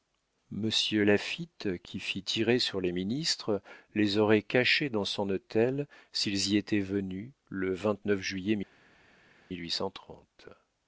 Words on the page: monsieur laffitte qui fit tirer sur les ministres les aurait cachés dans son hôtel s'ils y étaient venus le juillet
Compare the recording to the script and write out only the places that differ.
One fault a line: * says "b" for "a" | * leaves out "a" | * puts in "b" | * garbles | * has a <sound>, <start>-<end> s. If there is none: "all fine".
all fine